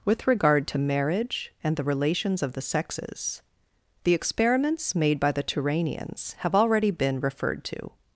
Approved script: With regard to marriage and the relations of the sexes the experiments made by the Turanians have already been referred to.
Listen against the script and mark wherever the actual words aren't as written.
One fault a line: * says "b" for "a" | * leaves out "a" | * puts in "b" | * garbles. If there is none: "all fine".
all fine